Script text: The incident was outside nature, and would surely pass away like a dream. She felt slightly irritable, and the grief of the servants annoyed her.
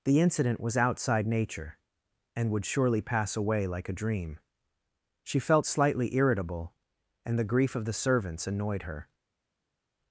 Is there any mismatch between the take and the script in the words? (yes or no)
no